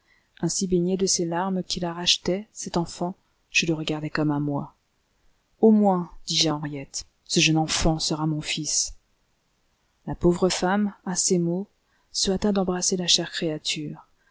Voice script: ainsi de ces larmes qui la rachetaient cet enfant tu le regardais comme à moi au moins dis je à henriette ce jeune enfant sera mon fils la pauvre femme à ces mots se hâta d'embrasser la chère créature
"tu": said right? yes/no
no